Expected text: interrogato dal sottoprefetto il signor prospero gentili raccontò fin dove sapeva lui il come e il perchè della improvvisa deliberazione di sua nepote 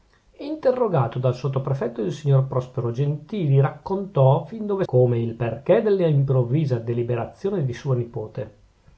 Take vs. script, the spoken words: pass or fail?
fail